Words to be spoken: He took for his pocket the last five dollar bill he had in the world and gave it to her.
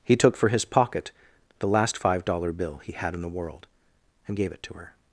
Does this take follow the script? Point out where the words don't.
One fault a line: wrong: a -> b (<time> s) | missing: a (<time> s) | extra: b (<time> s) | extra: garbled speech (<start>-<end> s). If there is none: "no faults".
no faults